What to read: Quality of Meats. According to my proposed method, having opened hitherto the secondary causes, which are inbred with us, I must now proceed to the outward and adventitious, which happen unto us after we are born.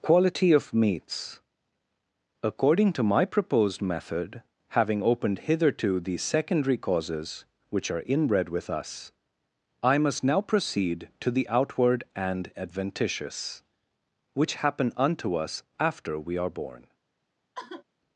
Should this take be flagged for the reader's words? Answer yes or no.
no